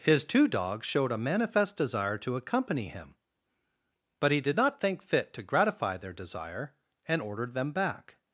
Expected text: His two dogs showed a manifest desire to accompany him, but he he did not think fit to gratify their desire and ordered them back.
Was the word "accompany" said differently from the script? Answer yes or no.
no